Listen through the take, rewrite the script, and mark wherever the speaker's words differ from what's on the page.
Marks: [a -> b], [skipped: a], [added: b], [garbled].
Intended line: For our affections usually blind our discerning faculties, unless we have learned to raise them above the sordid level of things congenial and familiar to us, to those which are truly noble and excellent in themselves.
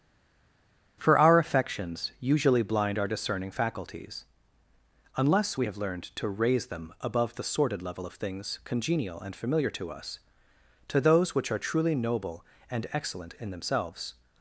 For our affections usually blind our discerning faculties, unless we have learned to raise them above the sordid level of things congenial and familiar to us, to those which are truly noble and excellent in themselves.